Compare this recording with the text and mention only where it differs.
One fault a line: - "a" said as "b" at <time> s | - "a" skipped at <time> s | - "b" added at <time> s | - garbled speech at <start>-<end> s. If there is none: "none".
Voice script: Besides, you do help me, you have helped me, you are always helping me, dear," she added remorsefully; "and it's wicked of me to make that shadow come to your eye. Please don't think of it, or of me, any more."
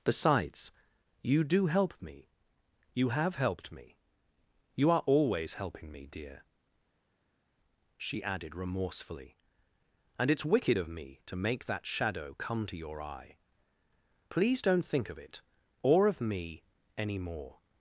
none